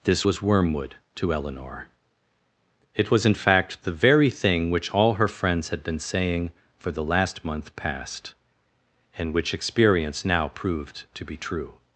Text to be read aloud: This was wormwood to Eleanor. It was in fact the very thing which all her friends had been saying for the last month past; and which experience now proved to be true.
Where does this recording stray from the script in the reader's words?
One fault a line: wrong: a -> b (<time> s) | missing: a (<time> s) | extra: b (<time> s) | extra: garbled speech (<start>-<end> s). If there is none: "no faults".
no faults